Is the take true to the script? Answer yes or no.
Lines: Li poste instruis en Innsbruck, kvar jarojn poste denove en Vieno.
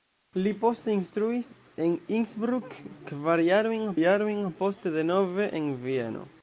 no